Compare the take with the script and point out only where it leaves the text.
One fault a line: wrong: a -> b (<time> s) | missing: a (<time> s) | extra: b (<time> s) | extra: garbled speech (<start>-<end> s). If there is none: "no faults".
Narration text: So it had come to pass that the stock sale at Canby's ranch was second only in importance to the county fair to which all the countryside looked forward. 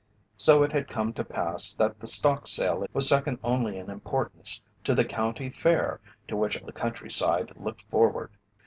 missing: at Canby's ranch (2.8 s)
missing: all (6.6 s)